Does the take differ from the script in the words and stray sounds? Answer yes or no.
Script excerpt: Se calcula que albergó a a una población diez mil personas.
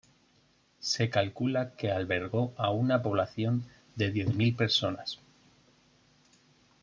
yes